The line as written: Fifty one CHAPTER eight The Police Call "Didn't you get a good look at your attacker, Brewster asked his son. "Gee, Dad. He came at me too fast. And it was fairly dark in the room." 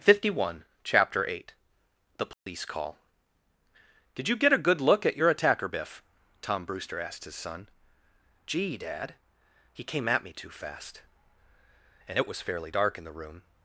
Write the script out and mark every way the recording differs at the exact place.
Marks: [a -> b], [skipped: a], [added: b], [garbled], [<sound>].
Fifty one CHAPTER eight The Police [dropout] Call ["Didn't -> Did] you get a good look at your attacker, [added: Biff Tom] Brewster asked his son. "Gee, Dad. He came at me too fast. And it was fairly dark in the room."